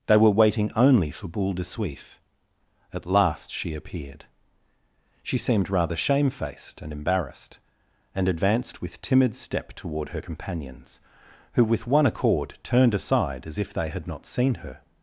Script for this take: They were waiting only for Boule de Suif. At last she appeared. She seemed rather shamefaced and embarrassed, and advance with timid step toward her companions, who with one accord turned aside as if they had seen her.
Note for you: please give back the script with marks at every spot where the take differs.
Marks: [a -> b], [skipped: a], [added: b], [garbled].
They were waiting only for Boule de Suif. At last she appeared. She seemed rather shamefaced and embarrassed, and [advance -> advanced] with timid step toward her companions, who with one accord turned aside as if they had [added: not] seen her.